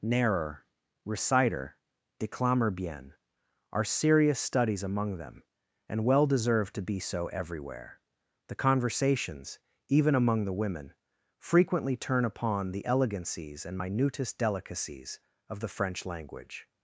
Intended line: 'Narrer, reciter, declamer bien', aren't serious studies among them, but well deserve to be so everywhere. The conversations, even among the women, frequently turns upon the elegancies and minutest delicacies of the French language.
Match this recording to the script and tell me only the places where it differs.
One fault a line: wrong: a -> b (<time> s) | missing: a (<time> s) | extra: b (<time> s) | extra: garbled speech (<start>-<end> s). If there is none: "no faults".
wrong: aren't -> are (3.7 s)
wrong: but -> and (5.9 s)
wrong: turns -> turn (12.0 s)